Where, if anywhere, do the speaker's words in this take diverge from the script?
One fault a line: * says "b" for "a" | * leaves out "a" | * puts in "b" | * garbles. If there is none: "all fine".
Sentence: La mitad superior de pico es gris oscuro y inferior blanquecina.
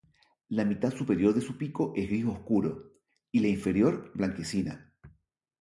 * puts in "su"
* puts in "la"